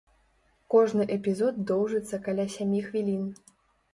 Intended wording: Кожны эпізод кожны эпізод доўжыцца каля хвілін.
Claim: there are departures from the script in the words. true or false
true